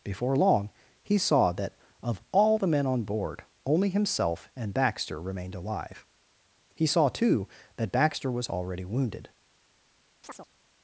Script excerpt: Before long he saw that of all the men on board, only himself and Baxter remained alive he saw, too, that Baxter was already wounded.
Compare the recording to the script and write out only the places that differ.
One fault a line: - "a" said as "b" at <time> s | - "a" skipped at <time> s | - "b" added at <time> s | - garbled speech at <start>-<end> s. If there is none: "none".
none